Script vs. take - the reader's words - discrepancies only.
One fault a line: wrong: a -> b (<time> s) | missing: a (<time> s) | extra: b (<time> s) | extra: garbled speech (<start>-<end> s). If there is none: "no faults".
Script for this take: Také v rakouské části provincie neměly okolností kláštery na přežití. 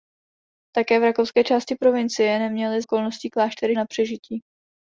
no faults